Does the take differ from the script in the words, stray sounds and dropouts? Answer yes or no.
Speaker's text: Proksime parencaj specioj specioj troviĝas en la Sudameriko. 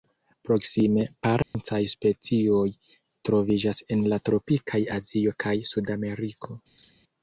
yes